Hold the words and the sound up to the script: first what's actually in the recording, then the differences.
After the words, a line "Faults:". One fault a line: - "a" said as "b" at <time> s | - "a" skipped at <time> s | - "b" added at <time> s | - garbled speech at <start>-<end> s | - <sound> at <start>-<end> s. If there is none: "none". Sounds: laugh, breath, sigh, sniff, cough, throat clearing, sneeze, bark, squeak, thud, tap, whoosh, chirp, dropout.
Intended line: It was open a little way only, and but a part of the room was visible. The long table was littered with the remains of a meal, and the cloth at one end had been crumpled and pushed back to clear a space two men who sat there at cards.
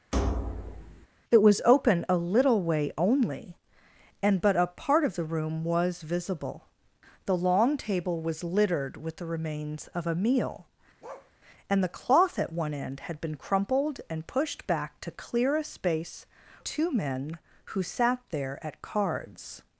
It was open a little way only, and but a part of the room was visible. The long table was littered with the remains of a meal, and the cloth at one end had been crumpled and pushed back to clear a space two men who sat there at cards.
Faults:
- thud at 0.1-1.1 s
- bark at 11.0-11.3 s